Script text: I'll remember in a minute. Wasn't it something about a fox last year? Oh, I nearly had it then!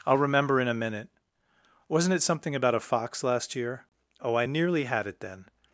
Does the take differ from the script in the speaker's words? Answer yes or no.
no